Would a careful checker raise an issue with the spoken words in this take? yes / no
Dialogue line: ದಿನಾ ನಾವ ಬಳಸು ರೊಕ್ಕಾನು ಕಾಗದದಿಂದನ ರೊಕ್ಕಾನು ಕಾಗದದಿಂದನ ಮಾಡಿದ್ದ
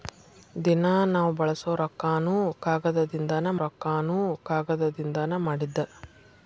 no